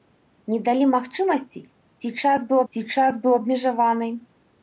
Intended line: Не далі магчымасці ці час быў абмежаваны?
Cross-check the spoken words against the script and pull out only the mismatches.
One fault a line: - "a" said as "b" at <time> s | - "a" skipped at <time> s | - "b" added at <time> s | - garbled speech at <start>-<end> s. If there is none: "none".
- "ці час быў" added at 2.7 s